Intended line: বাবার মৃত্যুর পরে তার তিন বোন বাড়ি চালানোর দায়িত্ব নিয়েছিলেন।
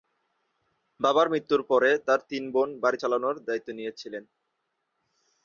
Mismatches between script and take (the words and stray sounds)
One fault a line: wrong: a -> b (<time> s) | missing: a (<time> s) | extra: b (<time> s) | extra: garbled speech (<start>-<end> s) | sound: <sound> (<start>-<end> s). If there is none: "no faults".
no faults